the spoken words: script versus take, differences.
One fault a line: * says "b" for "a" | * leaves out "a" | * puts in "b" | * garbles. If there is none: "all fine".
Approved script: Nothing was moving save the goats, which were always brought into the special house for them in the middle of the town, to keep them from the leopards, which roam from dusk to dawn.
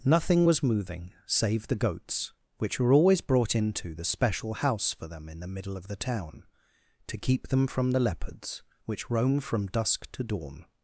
all fine